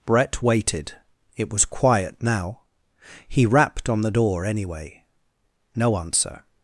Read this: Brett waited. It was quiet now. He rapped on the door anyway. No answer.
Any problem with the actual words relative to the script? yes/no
no